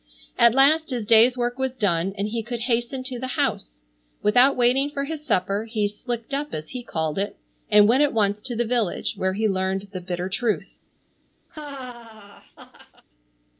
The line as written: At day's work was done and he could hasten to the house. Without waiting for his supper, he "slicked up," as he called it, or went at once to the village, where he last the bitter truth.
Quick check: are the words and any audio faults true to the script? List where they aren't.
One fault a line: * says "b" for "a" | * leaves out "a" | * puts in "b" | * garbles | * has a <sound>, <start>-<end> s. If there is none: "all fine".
* puts in "last his"
* says "and" for "or"
* says "learned" for "last"
* has a laugh, 11.5-13.0 s